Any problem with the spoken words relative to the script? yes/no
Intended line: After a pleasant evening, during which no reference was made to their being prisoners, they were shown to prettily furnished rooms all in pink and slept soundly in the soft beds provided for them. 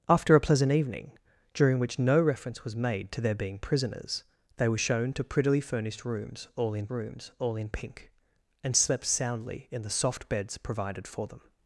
yes